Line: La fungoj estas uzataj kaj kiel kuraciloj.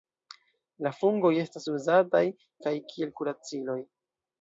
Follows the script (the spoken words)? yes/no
yes